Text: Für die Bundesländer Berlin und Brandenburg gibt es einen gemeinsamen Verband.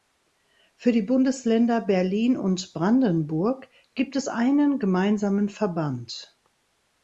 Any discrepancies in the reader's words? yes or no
no